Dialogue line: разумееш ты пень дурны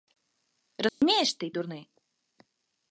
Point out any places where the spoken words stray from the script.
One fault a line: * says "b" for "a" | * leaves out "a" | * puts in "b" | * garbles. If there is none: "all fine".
* leaves out "пень"